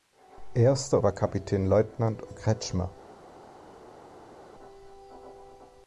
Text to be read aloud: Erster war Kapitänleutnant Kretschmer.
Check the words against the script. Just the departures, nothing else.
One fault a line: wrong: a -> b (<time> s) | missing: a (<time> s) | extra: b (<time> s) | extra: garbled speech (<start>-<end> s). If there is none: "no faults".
no faults